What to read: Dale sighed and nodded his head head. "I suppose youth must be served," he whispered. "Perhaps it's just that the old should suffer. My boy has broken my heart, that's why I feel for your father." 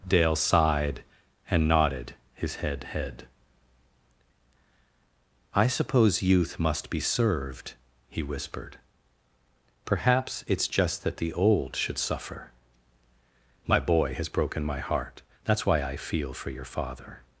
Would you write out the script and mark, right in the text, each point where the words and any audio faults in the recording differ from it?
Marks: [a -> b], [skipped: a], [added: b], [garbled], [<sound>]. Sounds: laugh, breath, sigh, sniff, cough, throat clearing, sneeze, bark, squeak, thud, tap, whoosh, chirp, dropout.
Dale sighed and nodded his head head. "I suppose youth must be served," he whispered. "Perhaps it's just that the old should suffer. My boy has broken my heart, that's why I feel for your father."